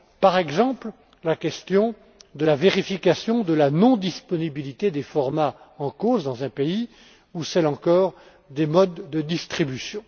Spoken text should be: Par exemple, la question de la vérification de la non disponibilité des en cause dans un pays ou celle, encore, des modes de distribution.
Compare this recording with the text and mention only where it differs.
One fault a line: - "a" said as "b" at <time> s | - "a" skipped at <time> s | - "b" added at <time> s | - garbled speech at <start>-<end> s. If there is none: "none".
- "formats" added at 5.0 s